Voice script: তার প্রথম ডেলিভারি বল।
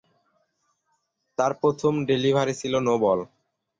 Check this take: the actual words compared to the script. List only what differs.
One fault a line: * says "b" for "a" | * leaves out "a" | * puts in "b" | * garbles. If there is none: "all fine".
* puts in "ছিল নো"